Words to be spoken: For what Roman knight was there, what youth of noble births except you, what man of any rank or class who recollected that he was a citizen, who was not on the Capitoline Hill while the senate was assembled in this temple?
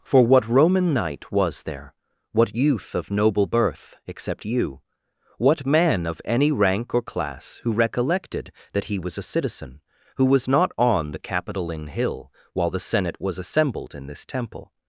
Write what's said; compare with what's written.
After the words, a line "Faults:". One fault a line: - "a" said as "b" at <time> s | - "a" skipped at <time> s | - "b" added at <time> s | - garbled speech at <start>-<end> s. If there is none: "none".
For what Roman knight was there, what youth of noble birth except you, what man of any rank or class who recollected that he was a citizen, who was not on the Capitoline Hill while the senate was assembled in this temple?
Faults:
- "births" said as "birth" at 3.5 s